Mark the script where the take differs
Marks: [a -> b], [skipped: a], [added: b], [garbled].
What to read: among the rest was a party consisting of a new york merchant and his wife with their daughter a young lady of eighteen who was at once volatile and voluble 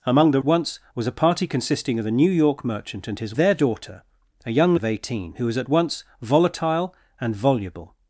among the [rest -> once] was a party consisting of a new york merchant and his [skipped: wife with] their daughter a young [skipped: lady] of eighteen who was at once volatile and voluble